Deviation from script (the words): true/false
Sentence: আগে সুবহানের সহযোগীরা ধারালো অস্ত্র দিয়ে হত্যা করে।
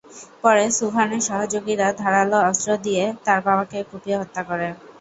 true